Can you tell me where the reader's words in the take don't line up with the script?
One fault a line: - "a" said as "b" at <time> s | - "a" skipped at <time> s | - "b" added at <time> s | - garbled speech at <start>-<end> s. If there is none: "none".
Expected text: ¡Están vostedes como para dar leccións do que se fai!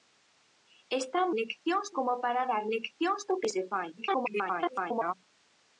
- "vostedes" said as "leccións" at 1.4 s
- garbled speech at 4.0-5.1 s